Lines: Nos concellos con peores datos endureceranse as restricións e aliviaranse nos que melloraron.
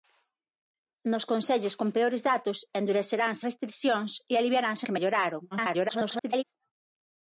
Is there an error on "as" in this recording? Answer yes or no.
yes